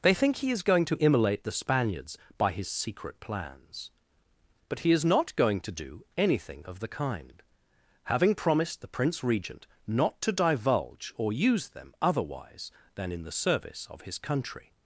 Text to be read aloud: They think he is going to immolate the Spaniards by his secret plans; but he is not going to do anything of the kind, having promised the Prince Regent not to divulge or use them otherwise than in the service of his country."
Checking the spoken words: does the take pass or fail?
pass